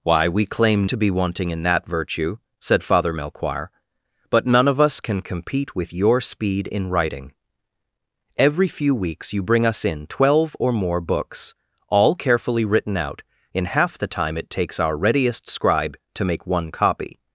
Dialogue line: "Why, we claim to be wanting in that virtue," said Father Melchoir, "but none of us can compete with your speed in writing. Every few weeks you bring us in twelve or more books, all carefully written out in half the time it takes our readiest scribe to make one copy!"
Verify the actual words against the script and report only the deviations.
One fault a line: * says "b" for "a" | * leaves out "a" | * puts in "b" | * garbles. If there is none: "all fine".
all fine